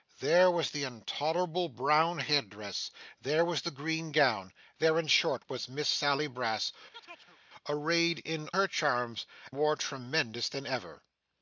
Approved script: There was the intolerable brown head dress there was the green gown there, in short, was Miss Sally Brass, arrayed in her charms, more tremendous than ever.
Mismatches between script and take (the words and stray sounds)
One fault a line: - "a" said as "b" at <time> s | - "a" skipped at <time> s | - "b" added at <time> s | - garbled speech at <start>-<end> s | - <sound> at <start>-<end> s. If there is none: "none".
- chirp at 6.9-7.4 s